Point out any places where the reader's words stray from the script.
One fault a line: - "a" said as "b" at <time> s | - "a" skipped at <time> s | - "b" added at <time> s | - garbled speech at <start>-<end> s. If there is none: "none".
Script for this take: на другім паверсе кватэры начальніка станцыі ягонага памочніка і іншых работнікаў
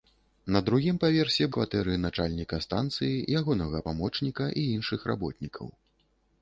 none